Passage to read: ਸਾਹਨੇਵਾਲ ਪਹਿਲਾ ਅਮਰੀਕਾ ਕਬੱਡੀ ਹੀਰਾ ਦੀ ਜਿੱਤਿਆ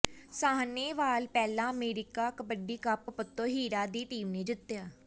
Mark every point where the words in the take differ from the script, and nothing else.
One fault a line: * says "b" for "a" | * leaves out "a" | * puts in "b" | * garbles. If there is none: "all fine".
* puts in "ਕੱਪ ਪੱਤੋ"
* puts in "ਟੀਮ ਨੇ"